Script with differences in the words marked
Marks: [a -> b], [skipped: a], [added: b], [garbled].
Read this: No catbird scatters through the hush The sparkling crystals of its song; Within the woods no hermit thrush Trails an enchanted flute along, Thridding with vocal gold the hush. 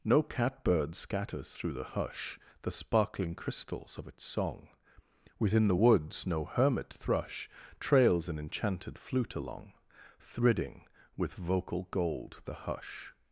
No catbird scatters through the hush The sparkling crystals of its song; Within the woods no hermit thrush Trails an enchanted flute along, Thridding with vocal gold the hush.